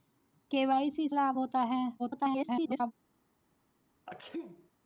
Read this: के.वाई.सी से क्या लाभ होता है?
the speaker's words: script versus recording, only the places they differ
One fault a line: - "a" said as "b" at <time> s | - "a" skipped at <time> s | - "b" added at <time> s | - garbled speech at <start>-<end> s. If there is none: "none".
- "से क्या" skipped at 1.1 s
- garbled speech at 2.0-2.9 s